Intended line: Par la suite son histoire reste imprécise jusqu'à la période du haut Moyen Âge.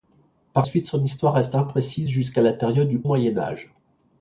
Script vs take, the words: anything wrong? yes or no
yes